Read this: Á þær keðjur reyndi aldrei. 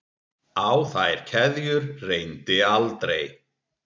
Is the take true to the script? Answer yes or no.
yes